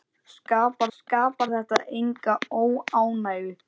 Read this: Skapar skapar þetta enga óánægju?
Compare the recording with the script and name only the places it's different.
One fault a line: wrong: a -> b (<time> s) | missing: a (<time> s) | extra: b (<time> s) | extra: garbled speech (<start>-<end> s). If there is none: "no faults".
no faults